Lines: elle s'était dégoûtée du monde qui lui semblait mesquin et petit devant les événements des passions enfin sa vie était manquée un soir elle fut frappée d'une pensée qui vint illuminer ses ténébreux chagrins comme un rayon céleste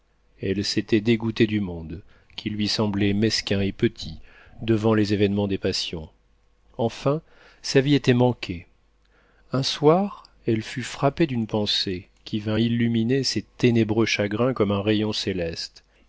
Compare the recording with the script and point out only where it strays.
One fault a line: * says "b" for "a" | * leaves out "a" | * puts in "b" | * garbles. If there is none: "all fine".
all fine